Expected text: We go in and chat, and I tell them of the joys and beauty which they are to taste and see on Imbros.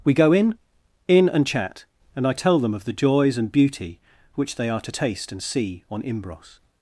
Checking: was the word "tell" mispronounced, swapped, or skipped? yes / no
no